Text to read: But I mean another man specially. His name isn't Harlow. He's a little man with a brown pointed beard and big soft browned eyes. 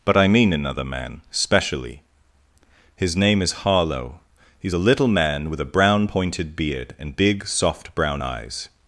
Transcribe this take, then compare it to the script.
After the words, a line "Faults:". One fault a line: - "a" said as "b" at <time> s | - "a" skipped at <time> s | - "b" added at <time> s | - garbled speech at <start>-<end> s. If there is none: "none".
But I mean another man specially. His name is Harlow. He's a little man with a brown pointed beard and big soft brown eyes.
Faults:
- "isn't" said as "is" at 3.4 s
- "browned" said as "brown" at 7.9 s